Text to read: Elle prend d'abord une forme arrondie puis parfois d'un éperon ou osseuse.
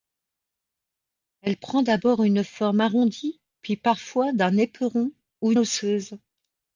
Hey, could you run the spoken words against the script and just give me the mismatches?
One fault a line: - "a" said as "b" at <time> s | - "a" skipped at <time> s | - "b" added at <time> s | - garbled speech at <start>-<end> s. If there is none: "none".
none